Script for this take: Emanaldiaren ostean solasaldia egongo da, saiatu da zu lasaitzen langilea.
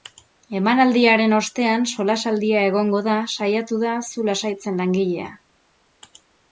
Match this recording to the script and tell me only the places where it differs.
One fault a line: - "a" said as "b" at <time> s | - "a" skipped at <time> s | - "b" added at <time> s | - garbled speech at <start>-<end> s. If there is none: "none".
none